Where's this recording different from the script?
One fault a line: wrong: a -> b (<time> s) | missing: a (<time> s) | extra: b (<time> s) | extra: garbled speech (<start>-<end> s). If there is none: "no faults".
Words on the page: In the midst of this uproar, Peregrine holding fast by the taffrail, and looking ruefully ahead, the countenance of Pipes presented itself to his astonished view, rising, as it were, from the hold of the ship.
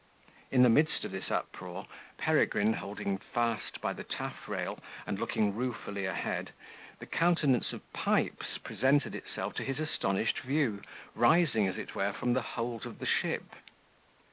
no faults